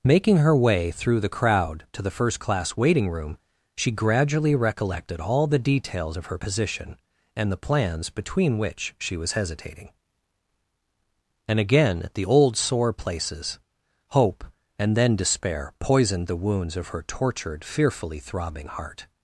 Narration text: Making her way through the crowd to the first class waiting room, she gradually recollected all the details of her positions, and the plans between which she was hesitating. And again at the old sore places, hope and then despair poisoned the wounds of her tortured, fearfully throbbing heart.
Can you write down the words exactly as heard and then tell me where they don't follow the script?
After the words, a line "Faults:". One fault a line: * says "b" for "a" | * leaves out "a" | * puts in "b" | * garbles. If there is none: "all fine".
Making her way through the crowd to the first class waiting room, she gradually recollected all the details of her position, and the plans between which she was hesitating. And again at the old sore places, hope and then despair poisoned the wounds of her tortured, fearfully throbbing heart.
Faults:
* says "position" for "positions"